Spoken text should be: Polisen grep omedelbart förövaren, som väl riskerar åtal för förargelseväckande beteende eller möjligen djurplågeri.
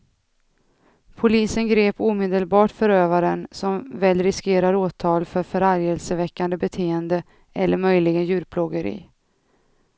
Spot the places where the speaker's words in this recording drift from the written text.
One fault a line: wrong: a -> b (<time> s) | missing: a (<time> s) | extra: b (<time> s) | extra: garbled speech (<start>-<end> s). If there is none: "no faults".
no faults